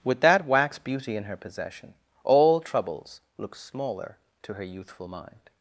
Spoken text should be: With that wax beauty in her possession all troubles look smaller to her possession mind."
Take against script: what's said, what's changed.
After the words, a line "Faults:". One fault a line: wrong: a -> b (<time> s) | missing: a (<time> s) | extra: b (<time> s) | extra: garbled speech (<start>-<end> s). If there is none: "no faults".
With that wax beauty in her possession all troubles look smaller to her youthful mind."
Faults:
wrong: possession -> youthful (4.6 s)